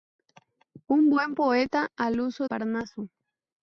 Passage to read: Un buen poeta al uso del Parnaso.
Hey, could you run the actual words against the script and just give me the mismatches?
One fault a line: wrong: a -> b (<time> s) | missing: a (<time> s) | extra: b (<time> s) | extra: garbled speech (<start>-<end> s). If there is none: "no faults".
missing: del (2.5 s)